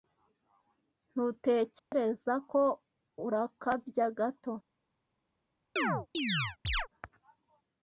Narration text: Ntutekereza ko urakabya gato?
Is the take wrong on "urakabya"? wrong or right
right